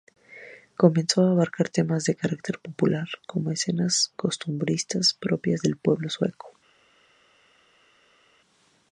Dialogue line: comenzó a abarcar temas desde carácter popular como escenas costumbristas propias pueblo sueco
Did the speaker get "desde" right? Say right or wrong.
wrong